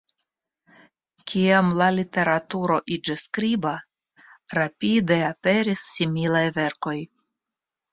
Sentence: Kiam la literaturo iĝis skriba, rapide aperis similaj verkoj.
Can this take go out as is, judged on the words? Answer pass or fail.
pass